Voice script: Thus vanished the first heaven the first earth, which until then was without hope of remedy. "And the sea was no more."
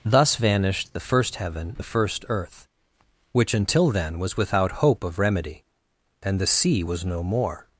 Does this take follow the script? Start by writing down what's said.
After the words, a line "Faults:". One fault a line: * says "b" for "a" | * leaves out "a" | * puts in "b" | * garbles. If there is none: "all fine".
Thus vanished the first heaven the first earth, which until then was without hope of remedy. "And the sea was no more."
Faults:
all fine